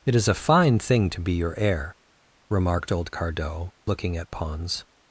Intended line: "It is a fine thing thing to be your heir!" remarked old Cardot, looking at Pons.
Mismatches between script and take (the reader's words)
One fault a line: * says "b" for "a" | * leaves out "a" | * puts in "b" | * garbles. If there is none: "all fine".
* leaves out "thing"